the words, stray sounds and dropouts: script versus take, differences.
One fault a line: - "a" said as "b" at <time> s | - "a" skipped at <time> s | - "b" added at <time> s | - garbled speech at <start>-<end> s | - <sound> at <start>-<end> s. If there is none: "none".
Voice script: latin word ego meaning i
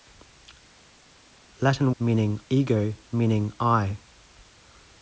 - "word" said as "meaning" at 2.0 s